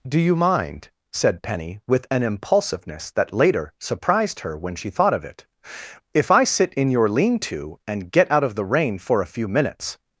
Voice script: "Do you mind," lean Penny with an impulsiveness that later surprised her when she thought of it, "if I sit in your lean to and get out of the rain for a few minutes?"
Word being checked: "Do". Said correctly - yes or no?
yes